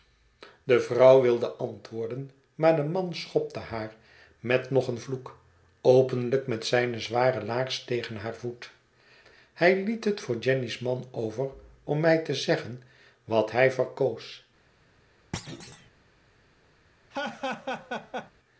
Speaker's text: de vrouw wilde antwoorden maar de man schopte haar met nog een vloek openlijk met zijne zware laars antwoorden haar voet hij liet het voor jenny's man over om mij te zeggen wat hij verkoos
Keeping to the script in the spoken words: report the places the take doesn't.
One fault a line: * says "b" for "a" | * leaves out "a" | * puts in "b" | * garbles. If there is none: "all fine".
* says "tegen" for "antwoorden"